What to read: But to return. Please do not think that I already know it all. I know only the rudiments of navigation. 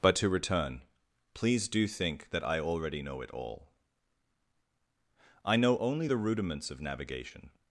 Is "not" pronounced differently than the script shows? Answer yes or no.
yes